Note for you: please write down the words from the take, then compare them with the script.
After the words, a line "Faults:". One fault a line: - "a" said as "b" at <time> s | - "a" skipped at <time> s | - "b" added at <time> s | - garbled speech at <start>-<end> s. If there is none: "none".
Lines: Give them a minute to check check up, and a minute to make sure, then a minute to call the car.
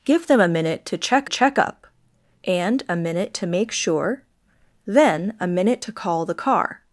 Give them a minute to check check up, and a minute to make sure, then a minute to call the car.
Faults:
none